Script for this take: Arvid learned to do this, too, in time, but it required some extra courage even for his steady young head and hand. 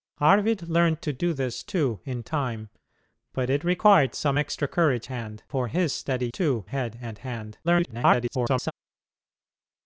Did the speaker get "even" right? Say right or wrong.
wrong